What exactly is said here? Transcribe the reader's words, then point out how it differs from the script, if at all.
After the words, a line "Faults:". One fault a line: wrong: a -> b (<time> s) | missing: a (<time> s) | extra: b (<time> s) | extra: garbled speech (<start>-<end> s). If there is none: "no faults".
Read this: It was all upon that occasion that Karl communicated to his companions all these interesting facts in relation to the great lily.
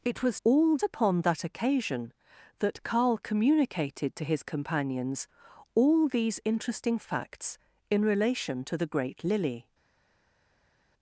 It was all upon that occasion that Karl communicated to his companions all these interesting facts in relation to the great lily.
Faults:
no faults